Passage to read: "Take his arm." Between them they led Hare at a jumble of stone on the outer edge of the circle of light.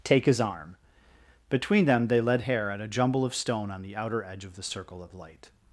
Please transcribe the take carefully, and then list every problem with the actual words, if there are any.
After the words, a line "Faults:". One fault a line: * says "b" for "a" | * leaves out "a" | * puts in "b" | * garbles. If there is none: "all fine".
"Take his arm." Between them they led Hare at a jumble of stone on the outer edge of the circle of light.
Faults:
all fine